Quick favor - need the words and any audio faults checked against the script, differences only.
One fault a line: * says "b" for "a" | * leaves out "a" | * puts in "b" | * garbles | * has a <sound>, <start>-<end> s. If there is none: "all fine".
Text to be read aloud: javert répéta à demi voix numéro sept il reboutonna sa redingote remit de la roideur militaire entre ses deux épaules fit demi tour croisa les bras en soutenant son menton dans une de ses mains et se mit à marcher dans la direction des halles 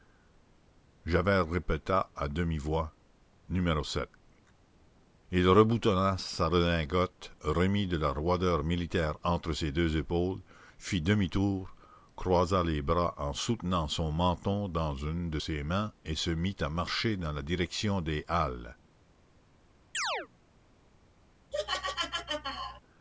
* has a chirp, 19.9-20.3 s
* has a laugh, 21.5-22.8 s